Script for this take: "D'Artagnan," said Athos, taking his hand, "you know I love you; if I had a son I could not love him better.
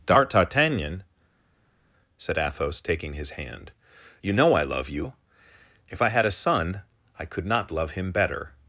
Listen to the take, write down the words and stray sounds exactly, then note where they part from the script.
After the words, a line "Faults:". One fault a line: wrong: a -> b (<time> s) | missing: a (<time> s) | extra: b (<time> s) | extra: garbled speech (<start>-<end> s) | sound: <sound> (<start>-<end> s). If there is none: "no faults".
"D'Artagnan," said Athos, taking his hand, "you know I love you; if I had a son I could not love him better.
Faults:
no faults